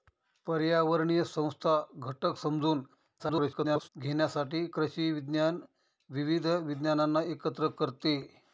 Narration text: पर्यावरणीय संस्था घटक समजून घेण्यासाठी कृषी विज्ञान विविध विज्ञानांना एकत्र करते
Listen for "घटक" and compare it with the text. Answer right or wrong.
right